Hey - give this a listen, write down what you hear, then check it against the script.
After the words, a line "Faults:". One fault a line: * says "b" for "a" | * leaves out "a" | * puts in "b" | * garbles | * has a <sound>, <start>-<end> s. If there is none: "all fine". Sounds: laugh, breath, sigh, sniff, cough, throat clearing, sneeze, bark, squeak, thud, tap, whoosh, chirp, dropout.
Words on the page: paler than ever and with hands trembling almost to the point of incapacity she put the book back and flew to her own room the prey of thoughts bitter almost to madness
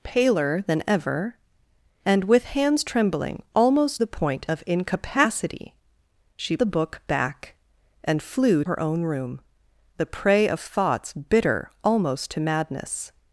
paler than ever and with hands trembling almost the point of incapacity she the book back and flew her own room the prey of thoughts bitter almost to madness
Faults:
* leaves out "to"
* leaves out "put"
* leaves out "to"